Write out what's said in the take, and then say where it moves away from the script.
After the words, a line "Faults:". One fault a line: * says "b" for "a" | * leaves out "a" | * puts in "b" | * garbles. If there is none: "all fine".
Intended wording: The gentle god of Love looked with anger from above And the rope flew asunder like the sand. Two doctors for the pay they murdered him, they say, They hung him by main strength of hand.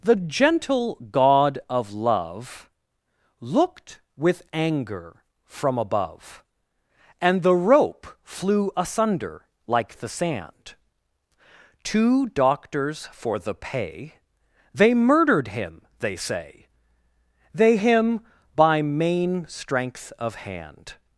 The gentle god of Love looked with anger from above And the rope flew asunder like the sand. Two doctors for the pay they murdered him, they say, They him by main strength of hand.
Faults:
* leaves out "hung"